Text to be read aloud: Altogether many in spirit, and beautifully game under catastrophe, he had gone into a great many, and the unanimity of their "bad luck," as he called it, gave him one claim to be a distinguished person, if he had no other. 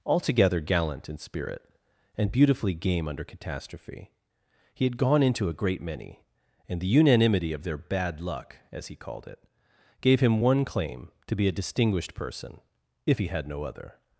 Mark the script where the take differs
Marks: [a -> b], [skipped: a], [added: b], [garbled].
Altogether [many -> gallant] in spirit, and beautifully game under catastrophe, he had gone into a great many, and the unanimity of their "bad luck," as he called it, gave him one claim to be a distinguished person, if he had no other.